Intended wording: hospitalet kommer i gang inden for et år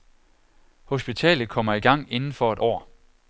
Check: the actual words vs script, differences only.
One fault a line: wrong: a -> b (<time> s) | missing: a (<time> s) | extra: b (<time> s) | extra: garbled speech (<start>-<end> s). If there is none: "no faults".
no faults